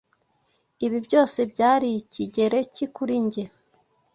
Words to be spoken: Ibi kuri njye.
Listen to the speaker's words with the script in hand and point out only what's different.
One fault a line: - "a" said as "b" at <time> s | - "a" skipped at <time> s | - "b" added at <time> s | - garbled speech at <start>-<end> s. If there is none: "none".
- "byose byari Ikigereki" added at 1.1 s